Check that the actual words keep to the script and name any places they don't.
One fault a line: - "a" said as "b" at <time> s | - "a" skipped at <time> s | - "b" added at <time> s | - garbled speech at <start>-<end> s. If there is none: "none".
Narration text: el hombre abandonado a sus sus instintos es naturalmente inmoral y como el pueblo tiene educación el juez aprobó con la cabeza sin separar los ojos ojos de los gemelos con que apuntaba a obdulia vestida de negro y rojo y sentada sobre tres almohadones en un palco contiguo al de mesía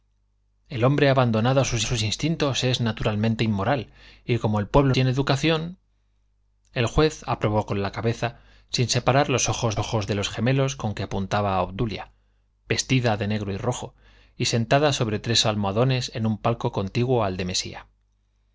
none